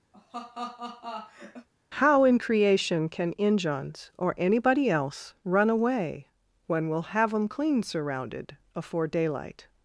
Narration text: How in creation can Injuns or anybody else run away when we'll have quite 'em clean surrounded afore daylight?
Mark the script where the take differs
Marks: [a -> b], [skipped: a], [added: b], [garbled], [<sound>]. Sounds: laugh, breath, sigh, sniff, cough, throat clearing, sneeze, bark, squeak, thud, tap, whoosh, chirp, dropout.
[laugh] How in creation can Injuns or anybody else run away when we'll have [skipped: quite] 'em clean surrounded afore daylight?